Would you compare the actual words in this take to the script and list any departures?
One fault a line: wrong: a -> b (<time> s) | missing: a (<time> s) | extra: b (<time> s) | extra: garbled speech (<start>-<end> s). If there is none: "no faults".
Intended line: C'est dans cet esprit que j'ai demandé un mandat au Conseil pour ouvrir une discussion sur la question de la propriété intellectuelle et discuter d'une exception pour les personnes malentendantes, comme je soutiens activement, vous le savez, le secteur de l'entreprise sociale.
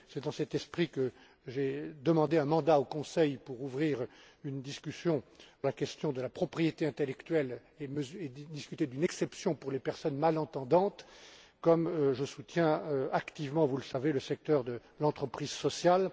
missing: sur (5.2 s)